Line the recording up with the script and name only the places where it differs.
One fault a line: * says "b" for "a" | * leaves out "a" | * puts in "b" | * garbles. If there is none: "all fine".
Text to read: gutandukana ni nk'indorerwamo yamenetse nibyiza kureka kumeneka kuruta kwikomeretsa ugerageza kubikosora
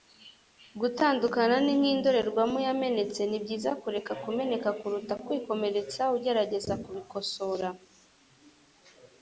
all fine